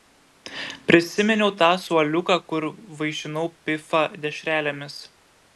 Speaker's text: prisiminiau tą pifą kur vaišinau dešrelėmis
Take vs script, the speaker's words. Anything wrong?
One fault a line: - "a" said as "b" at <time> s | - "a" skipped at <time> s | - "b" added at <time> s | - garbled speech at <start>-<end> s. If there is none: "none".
- "pifą" said as "suoliuką" at 1.8 s
- "pifą" added at 3.7 s